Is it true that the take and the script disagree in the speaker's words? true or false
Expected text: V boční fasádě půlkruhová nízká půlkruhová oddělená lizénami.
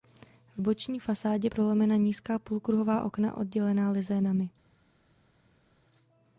true